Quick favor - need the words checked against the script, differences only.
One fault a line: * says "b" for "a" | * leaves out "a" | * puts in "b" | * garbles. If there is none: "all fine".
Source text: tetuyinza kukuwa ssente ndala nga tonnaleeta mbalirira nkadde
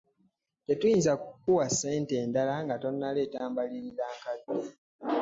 all fine